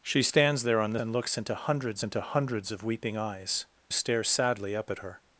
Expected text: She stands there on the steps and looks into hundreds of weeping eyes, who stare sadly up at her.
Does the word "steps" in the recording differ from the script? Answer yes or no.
yes